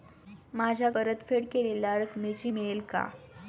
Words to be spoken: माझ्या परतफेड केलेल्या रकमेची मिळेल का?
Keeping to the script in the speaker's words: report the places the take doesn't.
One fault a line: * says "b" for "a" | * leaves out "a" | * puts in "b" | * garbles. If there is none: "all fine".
all fine